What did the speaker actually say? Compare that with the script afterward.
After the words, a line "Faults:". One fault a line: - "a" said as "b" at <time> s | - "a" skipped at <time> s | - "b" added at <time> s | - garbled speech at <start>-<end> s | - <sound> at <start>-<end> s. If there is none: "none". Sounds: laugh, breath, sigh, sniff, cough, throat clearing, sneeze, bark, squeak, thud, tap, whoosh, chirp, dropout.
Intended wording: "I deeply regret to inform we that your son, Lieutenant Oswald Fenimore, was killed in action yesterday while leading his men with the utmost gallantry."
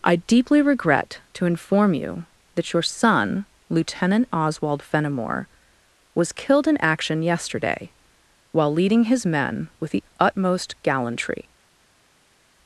"I deeply regret to inform you that your son, Lieutenant Oswald Fenimore, was killed in action yesterday while leading his men with the utmost gallantry."
Faults:
- "we" said as "you" at 1.9 s